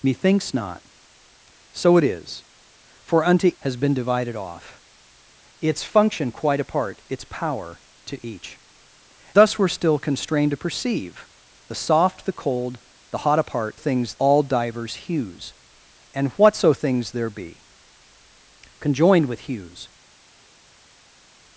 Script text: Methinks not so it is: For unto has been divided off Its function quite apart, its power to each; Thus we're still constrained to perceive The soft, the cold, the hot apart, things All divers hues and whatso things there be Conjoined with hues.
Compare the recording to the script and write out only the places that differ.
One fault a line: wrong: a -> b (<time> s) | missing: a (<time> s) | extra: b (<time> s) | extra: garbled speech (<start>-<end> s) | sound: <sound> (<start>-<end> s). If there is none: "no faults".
no faults